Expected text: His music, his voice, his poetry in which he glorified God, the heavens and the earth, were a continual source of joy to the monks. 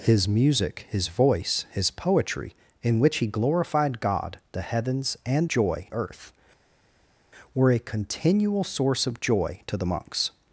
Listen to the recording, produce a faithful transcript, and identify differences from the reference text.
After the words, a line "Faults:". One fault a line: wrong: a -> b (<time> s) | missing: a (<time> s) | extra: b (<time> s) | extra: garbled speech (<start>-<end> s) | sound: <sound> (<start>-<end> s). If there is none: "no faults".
His music, his voice, his poetry in which he glorified God, the heavens and joy earth, were a continual source of joy to the monks.
Faults:
wrong: the -> joy (5.5 s)